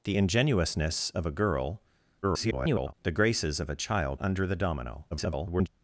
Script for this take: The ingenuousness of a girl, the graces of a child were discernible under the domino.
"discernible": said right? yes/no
no